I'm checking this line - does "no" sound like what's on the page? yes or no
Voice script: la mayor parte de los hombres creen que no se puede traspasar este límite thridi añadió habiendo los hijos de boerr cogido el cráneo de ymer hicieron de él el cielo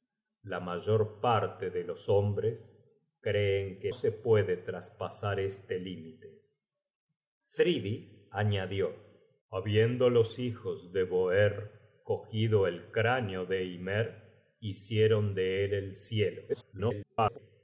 no